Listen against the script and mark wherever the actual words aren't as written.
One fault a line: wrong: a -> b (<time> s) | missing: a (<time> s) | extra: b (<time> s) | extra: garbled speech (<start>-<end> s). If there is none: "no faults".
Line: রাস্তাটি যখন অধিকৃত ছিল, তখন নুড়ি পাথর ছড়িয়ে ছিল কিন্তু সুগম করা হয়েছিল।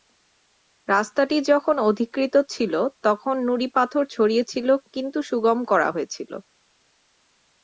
no faults